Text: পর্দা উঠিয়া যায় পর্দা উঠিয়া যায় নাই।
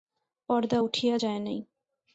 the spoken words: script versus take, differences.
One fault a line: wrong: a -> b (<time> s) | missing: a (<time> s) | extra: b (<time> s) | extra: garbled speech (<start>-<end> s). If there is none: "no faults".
missing: পর্দা উঠিয়া যায় (1.4 s)